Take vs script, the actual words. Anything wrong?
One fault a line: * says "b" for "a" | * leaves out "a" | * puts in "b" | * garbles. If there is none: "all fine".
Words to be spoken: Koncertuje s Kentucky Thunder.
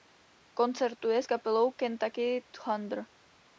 * puts in "kapelou"